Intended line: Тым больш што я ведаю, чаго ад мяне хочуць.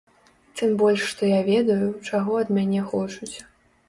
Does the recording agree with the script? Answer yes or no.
yes